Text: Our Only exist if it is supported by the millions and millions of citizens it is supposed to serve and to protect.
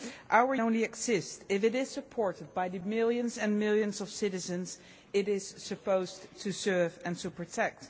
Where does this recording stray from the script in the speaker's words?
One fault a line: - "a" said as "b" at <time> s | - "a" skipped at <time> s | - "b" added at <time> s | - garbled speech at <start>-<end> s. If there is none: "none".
none